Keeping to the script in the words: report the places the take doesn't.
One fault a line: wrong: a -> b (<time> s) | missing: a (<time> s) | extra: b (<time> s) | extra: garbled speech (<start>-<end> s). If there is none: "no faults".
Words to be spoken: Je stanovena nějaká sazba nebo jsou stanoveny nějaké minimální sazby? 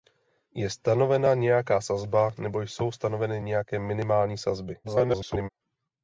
extra: garbled speech (4.8-5.5 s)